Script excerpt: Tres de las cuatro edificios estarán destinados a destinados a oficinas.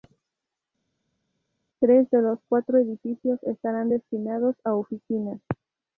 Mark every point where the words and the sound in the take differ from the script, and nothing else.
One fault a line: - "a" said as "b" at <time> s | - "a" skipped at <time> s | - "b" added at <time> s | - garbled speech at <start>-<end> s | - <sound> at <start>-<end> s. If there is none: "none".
- "las" said as "los" at 2.2 s
- "destinados a" skipped at 4.7 s